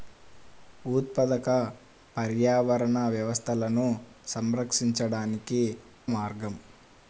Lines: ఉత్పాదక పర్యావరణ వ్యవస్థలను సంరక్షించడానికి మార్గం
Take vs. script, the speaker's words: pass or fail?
pass